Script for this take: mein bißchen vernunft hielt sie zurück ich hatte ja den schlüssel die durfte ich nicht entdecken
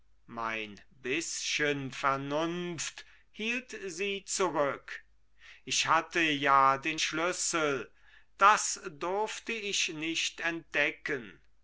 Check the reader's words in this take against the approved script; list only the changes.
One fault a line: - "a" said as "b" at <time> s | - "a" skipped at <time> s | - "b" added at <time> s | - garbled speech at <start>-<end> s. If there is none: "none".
- "die" said as "das" at 8.4 s